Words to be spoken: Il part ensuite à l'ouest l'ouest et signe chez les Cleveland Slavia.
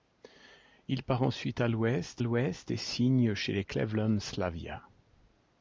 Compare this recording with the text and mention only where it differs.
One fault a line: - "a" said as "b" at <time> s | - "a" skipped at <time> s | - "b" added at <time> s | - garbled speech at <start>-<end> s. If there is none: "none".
none